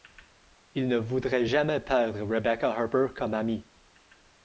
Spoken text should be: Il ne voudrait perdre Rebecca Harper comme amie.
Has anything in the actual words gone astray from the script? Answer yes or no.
yes